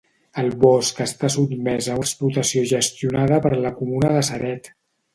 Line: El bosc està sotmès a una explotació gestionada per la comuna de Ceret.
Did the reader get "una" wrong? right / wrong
wrong